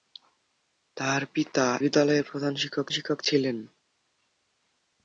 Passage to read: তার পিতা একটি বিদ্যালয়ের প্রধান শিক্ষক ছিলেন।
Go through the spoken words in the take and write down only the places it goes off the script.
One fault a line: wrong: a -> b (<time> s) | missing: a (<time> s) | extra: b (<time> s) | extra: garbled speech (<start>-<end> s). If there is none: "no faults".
missing: একটি (1.6 s)
extra: শিক্ষক (2.9 s)